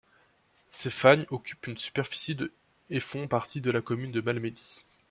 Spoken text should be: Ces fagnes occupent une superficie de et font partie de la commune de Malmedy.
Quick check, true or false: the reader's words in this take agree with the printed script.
true